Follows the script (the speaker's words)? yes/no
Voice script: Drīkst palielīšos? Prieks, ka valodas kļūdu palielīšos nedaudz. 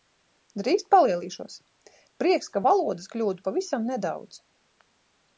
no